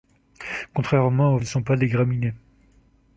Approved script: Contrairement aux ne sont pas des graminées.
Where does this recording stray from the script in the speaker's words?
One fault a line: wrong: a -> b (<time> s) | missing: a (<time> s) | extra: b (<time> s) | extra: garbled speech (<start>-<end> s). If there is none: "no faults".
no faults